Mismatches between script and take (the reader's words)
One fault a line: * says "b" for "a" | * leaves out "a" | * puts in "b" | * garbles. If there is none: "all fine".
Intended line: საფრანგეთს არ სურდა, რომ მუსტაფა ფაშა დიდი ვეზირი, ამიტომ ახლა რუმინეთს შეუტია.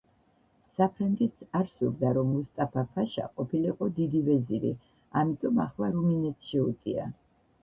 * puts in "ყოფილიყო"